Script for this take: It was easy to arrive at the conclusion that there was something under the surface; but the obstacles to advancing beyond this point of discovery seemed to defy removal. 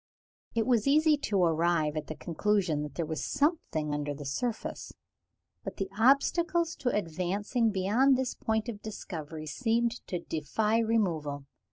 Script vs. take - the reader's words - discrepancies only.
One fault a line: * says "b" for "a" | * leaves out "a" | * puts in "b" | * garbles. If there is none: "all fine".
all fine